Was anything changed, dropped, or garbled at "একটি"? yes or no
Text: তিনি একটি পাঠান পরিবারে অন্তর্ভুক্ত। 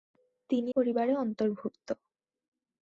yes